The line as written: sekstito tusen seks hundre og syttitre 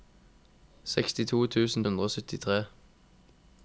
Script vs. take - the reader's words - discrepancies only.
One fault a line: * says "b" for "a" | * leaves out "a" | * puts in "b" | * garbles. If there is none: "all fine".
* leaves out "seks"